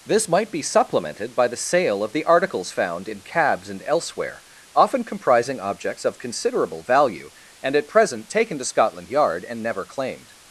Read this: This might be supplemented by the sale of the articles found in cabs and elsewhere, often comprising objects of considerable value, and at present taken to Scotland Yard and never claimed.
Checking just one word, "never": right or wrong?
right